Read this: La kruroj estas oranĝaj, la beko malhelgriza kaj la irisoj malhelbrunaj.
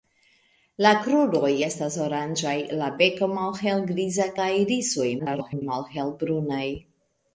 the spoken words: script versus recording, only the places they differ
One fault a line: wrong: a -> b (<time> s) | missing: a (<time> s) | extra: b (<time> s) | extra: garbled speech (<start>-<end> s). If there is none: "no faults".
missing: kaj (4.3 s)
extra: garbled speech (5.2-5.6 s)